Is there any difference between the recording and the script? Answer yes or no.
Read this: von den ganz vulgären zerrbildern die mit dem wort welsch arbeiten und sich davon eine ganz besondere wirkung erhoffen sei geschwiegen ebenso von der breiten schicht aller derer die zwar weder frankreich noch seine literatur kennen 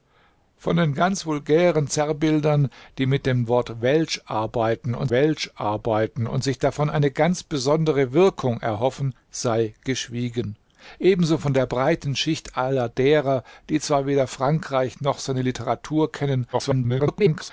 yes